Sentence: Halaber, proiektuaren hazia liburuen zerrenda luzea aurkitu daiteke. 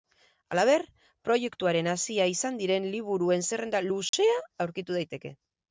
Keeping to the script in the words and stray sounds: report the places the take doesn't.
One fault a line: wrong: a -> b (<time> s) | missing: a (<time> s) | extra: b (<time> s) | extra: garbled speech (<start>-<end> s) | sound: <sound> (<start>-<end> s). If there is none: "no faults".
extra: izan diren (2.3 s)
sound: dropout (4.1-4.1 s)